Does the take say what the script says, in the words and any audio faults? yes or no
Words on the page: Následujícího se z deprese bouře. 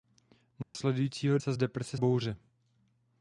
no